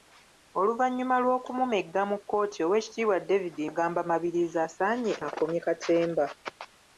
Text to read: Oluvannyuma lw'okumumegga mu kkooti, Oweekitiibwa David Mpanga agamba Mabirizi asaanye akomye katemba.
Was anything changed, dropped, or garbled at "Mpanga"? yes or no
yes